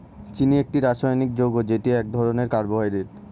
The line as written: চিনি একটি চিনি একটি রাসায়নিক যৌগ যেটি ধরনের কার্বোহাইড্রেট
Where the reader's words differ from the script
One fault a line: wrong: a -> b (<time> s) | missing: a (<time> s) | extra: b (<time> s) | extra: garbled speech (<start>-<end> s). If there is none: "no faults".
missing: চিনি একটি (0.8 s)
extra: এক (1.9 s)